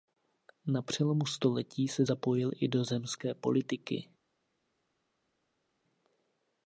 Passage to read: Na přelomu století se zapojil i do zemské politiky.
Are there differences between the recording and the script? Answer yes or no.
no